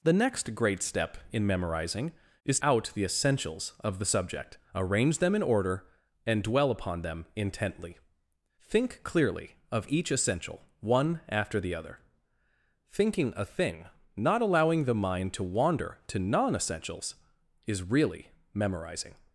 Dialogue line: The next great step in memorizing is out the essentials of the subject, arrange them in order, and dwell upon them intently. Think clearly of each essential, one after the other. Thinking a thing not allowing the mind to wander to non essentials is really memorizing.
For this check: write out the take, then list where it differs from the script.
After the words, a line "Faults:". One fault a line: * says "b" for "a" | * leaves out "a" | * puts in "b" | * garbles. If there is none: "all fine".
The next great step in memorizing is out the essentials of the subject, arrange them in order, and dwell upon them intently. Think clearly of each essential, one after the other. Thinking a thing not allowing the mind to wander to non essentials is really memorizing.
Faults:
all fine